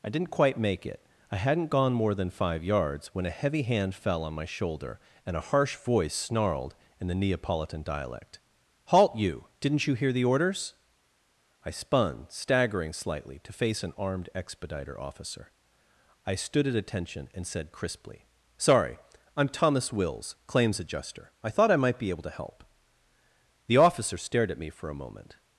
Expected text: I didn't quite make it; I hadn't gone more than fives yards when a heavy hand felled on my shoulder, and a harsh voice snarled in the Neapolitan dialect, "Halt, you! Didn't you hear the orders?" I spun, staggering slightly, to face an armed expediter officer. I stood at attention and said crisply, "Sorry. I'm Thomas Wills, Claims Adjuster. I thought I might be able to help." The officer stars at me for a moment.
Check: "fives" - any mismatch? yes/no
yes